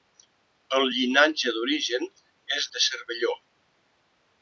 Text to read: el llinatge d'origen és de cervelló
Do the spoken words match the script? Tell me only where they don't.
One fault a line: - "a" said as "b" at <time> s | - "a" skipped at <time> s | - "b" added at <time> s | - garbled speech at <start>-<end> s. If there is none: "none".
none